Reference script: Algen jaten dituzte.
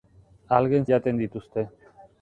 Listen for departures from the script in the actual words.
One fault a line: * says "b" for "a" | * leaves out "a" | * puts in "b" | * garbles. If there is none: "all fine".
all fine